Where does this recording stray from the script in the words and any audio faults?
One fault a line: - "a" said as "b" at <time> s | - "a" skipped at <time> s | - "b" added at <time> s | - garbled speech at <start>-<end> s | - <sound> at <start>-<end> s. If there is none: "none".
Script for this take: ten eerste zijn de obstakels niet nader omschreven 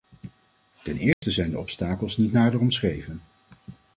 - dropout at 1.1-1.2 s